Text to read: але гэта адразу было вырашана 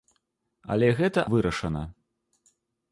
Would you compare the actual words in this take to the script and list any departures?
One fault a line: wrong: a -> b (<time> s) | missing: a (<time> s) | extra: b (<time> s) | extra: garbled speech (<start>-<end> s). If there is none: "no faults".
missing: адразу было (1.2 s)